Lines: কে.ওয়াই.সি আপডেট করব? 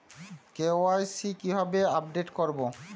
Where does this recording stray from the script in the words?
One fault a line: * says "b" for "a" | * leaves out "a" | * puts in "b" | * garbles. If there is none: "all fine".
* puts in "কিভাবে"